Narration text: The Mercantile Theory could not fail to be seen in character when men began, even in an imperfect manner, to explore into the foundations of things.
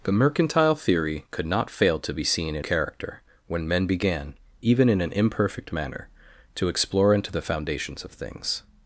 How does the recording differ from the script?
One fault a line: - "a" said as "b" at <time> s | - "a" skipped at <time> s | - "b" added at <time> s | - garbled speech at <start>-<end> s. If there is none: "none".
none